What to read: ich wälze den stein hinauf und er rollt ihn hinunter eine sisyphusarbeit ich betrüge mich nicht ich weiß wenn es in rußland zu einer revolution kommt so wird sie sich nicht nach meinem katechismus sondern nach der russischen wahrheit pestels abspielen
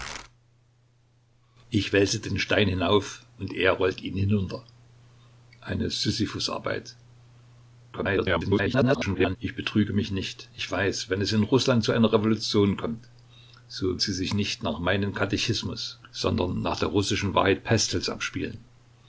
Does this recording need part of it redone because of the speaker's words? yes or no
yes